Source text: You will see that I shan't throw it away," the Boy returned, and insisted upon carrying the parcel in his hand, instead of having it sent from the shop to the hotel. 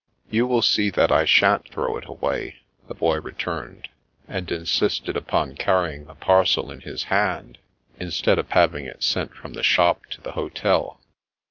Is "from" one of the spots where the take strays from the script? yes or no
no